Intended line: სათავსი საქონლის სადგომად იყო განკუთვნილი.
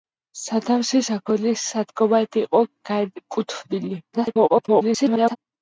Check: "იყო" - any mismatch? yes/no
no